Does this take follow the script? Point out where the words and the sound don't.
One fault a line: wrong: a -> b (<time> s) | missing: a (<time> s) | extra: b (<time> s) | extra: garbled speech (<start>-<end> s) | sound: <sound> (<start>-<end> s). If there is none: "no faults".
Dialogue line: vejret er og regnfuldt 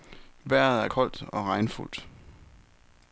extra: koldt (0.8 s)